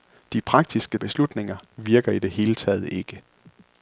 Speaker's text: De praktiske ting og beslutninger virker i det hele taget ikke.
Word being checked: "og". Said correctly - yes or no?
no